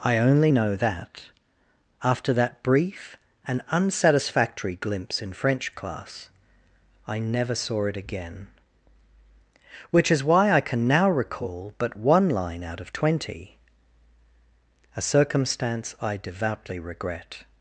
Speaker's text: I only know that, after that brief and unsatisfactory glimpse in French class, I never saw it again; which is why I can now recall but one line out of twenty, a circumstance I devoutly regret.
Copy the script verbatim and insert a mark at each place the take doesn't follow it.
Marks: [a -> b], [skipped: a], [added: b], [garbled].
I only know that, after that brief and unsatisfactory glimpse in French class, I never saw it again; which is why I can now recall but one line out of twenty, a circumstance I devoutly regret.